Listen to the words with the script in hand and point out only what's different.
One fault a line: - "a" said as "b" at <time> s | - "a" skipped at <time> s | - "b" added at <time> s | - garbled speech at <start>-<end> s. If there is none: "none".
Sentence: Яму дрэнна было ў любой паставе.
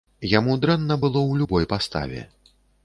none